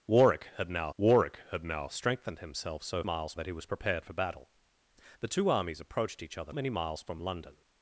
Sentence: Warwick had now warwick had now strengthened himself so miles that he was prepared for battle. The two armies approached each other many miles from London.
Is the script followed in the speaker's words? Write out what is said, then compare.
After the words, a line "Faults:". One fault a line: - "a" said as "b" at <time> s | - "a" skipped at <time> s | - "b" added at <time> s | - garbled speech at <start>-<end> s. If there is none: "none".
Warwick had now warwick had now strengthened himself so miles that he was prepared for battle. The two armies approached each other many miles from London.
Faults:
none